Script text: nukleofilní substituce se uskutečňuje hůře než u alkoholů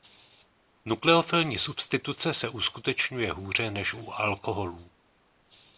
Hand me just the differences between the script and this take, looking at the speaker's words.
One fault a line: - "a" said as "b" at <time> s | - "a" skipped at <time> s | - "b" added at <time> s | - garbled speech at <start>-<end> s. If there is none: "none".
none